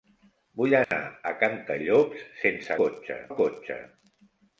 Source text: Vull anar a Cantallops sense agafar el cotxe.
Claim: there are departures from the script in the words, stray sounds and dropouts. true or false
true